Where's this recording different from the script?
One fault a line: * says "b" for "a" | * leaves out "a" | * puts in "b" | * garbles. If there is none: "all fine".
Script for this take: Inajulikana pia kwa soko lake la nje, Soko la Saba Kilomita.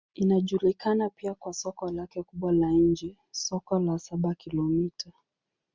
* puts in "kubwa"